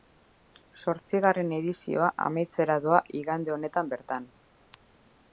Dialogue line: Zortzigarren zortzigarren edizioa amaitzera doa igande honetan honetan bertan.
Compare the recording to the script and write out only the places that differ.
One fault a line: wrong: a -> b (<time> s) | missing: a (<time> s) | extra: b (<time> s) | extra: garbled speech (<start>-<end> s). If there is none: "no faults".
missing: zortzigarren (1.5 s)
missing: honetan (3.9 s)